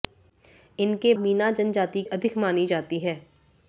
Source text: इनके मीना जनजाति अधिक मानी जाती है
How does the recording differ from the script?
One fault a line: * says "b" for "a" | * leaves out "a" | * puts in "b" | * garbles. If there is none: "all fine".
all fine